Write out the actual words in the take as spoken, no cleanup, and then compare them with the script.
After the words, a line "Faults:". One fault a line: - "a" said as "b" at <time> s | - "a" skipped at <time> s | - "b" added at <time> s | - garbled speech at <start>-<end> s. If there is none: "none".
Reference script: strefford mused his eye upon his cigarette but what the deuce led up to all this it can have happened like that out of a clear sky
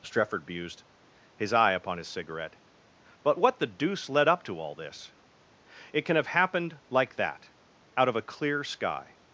strefford mused his eye upon his cigarette but what the deuce led up to all this it can have happened like that out of a clear sky
Faults:
none